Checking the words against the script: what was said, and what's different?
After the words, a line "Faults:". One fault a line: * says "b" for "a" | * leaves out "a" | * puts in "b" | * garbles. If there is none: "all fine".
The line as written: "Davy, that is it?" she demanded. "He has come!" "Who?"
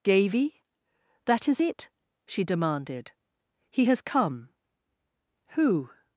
"Davy, that is it?" she demanded. "He has come!" "Who?"
Faults:
all fine